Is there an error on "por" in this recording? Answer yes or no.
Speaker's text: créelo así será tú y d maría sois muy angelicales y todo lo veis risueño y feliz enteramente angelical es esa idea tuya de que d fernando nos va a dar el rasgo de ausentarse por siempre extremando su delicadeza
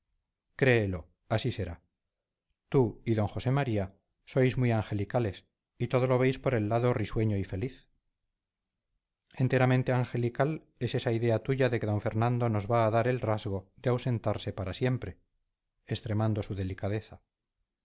yes